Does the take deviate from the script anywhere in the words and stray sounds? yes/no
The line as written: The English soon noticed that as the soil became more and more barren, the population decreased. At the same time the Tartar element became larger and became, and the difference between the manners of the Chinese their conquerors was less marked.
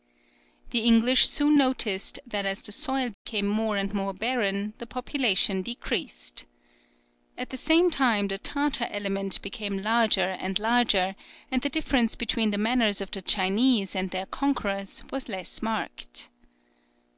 yes